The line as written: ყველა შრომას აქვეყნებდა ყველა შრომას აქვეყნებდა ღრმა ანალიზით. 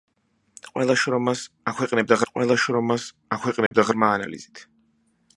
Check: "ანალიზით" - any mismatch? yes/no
no